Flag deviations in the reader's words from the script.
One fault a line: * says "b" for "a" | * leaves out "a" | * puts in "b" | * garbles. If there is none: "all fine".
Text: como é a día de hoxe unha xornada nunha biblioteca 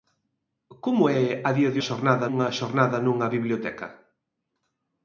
* says "xornada" for "hoxe"